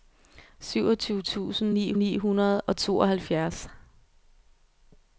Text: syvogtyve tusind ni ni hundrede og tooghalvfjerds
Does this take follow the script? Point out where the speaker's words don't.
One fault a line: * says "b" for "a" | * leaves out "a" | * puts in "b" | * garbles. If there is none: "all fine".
all fine